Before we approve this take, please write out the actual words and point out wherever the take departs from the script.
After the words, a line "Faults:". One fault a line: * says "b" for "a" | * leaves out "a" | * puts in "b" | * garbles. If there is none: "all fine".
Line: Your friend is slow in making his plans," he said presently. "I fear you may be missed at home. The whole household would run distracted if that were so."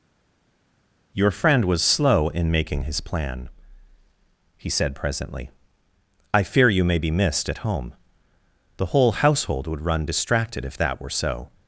Your friend was slow in making his plan," he said presently. "I fear you may be missed at home. The whole household would run distracted if that were so."
Faults:
* says "was" for "is"
* says "plan" for "plans"